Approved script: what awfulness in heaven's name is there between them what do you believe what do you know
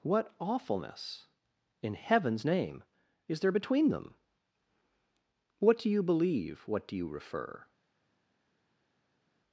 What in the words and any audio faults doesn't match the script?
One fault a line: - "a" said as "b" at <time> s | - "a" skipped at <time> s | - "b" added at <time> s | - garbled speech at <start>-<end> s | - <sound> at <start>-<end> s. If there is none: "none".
- "know" said as "refer" at 7.1 s